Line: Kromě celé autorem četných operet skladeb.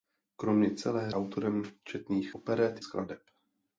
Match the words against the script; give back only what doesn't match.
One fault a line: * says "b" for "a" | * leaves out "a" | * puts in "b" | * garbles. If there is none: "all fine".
all fine